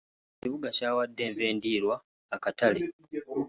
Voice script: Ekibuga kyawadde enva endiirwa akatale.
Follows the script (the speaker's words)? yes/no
yes